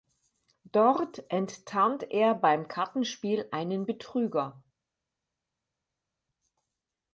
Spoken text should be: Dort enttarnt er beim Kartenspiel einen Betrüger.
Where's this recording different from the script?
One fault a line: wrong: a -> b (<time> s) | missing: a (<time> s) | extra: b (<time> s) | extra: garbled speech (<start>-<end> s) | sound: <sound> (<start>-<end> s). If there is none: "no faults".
no faults